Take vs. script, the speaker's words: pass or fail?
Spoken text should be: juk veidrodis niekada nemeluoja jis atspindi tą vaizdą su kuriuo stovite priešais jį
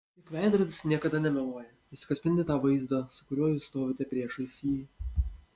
fail